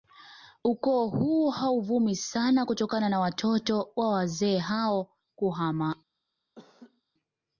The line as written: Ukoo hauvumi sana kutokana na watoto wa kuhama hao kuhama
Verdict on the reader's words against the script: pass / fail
fail